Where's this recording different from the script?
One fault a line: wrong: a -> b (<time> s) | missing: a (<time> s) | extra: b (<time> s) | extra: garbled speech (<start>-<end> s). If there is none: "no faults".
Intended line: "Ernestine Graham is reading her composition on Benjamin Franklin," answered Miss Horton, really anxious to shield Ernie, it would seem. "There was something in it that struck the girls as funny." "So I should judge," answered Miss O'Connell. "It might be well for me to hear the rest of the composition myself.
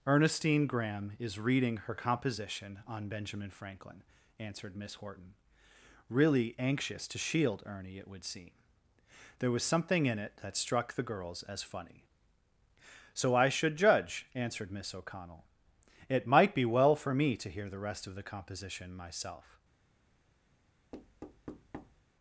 no faults